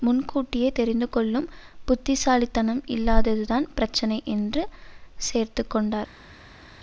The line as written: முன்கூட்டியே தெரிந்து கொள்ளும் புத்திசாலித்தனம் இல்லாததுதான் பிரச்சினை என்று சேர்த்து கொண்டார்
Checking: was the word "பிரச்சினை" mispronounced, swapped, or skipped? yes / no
no